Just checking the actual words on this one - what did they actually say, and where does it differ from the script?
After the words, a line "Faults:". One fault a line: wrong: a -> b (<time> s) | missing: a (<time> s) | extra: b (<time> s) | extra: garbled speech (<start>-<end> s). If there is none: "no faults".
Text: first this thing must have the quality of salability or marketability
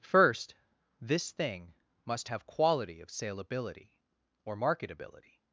first this thing must have quality of salability or marketability
Faults:
missing: the (2.5 s)